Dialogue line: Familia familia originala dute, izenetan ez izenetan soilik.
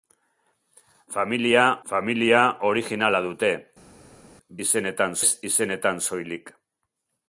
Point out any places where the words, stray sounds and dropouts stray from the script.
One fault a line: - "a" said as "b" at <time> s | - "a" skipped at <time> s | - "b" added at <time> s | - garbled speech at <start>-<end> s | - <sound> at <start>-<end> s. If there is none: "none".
none